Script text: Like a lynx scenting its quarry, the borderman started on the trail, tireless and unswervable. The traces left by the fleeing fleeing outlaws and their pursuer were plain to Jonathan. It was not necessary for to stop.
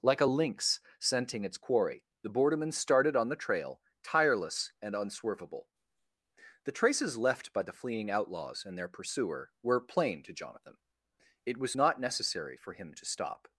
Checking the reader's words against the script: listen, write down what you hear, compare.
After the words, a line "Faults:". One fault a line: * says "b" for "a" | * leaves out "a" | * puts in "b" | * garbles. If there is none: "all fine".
Like a lynx scenting its quarry, the borderman started on the trail, tireless and unswervable. The traces left by the fleeing outlaws and their pursuer were plain to Jonathan. It was not necessary for him to stop.
Faults:
* leaves out "fleeing"
* puts in "him"